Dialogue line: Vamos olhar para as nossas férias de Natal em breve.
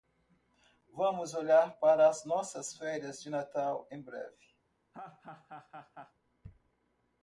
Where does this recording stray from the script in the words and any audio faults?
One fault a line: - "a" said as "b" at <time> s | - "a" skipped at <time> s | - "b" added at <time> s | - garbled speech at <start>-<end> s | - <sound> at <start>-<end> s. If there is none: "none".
- laugh at 4.9-6.1 s